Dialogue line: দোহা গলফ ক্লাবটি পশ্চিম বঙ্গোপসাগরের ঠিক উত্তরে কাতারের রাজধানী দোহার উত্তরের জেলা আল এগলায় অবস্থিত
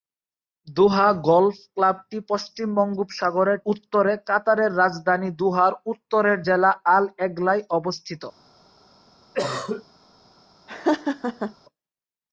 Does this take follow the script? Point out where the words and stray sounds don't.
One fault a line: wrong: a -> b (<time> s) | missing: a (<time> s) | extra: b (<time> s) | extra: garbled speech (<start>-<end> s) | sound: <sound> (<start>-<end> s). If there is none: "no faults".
missing: ঠিক (3.6 s)
sound: cough (9.3-9.8 s)
sound: laugh (10.7-11.5 s)